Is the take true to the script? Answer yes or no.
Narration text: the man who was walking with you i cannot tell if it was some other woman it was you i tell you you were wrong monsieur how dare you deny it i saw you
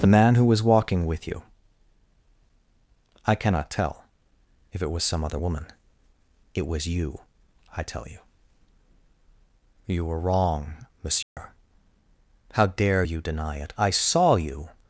yes